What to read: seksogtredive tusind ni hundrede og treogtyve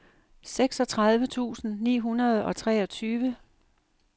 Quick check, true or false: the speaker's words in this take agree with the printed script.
true